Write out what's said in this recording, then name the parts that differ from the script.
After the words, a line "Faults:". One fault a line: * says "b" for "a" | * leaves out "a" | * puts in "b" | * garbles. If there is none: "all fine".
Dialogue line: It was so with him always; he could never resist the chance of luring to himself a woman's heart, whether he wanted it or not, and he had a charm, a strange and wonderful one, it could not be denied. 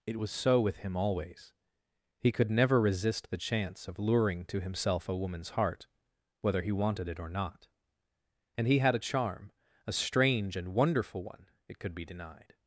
It was so with him always; he could never resist the chance of luring to himself a woman's heart, whether he wanted it or not, and he had a charm, a strange and wonderful one, it could be denied.
Faults:
* leaves out "not"